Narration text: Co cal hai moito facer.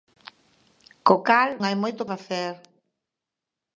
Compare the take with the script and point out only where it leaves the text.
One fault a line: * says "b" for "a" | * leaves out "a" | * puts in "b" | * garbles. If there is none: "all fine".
all fine